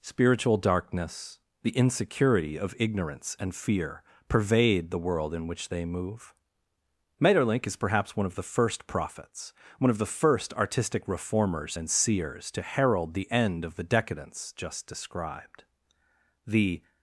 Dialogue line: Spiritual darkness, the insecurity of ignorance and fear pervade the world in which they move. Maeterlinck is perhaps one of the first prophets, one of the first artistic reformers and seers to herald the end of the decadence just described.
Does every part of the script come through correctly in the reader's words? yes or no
no